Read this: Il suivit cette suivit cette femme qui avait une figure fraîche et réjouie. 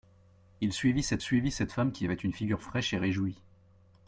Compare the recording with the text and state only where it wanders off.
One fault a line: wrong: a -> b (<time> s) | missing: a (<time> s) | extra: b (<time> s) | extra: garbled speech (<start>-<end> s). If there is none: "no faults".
no faults